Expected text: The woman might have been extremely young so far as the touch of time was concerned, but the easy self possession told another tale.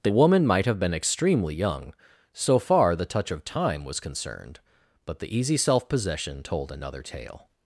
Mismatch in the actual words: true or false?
true